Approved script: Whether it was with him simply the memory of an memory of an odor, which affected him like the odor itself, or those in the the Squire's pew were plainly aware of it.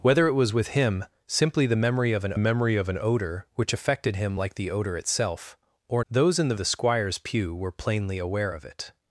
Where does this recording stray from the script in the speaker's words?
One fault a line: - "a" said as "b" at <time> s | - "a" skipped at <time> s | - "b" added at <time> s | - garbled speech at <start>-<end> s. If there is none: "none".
none